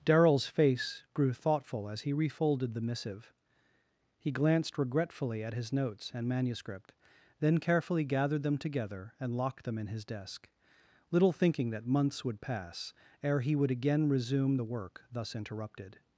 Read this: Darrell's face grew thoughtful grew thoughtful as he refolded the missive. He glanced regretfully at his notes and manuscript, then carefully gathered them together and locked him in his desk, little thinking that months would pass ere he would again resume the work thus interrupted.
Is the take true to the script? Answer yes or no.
no